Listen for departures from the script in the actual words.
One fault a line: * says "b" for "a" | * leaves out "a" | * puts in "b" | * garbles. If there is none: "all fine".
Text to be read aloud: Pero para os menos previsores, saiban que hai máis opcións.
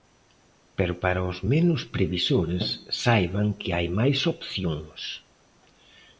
all fine